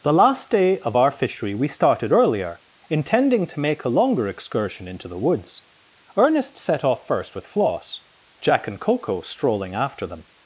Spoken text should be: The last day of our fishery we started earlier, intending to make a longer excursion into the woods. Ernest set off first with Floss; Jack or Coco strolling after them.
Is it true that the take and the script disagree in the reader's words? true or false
true